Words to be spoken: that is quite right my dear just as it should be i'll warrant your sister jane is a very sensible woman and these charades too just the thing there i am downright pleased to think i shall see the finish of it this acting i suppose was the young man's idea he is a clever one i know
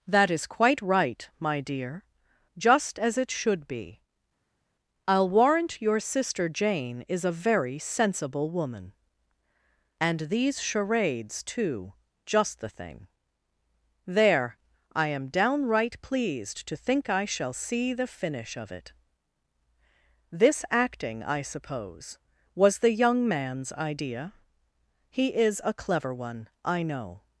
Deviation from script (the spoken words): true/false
false